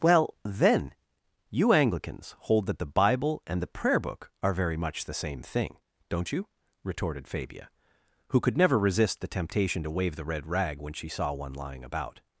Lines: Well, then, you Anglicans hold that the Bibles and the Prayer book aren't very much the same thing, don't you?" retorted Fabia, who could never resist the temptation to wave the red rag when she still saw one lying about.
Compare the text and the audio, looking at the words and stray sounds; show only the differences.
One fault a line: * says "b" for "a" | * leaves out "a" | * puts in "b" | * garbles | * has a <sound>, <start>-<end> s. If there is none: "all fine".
* says "Bible" for "Bibles"
* says "are" for "aren't"
* leaves out "still"